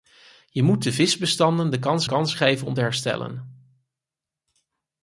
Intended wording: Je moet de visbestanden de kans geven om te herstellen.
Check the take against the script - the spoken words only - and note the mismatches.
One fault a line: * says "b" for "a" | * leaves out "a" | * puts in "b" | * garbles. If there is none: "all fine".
* puts in "kans"